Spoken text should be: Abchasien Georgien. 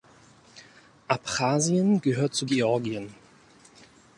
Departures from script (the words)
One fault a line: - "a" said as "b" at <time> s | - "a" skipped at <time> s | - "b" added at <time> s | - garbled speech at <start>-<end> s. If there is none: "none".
- "gehört zu" added at 2.0 s